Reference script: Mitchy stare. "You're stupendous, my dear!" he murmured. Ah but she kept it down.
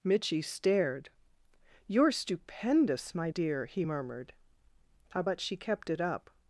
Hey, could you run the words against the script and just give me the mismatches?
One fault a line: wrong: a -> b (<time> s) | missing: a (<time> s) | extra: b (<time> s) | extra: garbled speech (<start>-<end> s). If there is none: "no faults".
wrong: stare -> stared (0.4 s)
wrong: down -> up (6.0 s)